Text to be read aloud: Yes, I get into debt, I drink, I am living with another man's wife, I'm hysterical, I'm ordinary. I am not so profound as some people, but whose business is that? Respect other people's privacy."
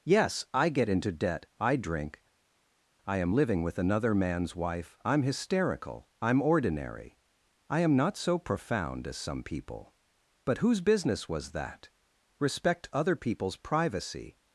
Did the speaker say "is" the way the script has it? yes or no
no